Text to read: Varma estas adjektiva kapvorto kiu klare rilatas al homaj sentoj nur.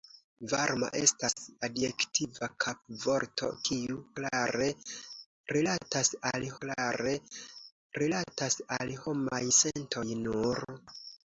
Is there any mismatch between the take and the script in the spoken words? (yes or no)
yes